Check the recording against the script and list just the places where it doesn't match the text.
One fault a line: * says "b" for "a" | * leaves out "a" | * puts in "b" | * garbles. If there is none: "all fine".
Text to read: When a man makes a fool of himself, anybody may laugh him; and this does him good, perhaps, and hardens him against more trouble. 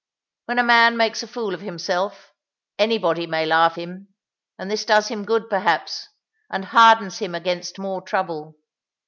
all fine